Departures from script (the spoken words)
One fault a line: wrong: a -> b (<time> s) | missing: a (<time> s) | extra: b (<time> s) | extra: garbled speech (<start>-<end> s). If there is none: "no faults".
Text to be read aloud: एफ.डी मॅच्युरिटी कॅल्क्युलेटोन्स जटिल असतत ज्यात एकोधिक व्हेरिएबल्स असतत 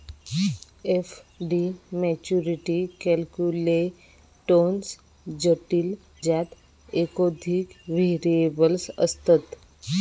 missing: असतत (5.9 s)